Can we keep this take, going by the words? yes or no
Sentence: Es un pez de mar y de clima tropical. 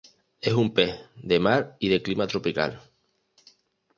yes